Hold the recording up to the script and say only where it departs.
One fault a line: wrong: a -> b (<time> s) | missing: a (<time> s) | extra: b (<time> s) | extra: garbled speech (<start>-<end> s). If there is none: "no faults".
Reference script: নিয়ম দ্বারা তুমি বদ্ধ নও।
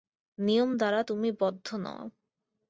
no faults